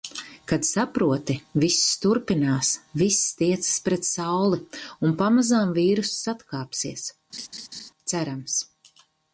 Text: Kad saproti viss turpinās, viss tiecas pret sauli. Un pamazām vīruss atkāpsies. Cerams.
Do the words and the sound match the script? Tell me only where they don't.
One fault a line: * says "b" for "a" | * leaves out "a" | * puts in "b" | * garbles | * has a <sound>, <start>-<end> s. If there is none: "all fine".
* has a laugh, 7.3-7.9 s